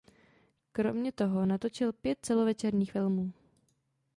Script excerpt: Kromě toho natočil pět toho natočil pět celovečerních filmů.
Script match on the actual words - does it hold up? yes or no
no